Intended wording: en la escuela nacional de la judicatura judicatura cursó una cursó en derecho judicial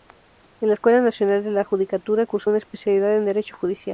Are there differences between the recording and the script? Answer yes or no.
yes